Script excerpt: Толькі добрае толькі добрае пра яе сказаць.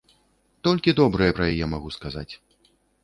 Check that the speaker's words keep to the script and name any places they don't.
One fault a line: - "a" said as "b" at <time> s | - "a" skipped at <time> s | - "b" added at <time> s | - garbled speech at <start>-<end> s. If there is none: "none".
- "толькі добрае" skipped at 1.3 s
- "магу" added at 1.8 s